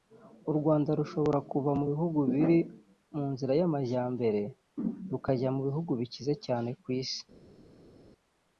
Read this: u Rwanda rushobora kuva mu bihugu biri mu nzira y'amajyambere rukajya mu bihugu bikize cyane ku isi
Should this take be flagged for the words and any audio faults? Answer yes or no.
no